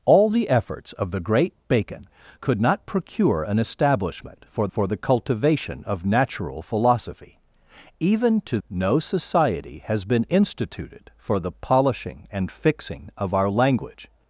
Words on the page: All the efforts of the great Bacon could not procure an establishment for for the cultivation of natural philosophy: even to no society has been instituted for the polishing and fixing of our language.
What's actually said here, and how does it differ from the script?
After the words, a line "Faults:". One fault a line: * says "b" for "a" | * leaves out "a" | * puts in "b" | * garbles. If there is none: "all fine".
All the efforts of the great Bacon could not procure an establishment for for the cultivation of natural philosophy: even to no society has been instituted for the polishing and fixing of our language.
Faults:
all fine